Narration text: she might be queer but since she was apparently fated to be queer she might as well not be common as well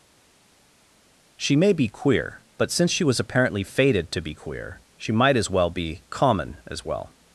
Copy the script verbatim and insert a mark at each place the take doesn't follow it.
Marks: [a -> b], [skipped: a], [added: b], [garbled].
she [might -> may] be queer but since she was apparently fated to be queer she might as well [skipped: not] be common as well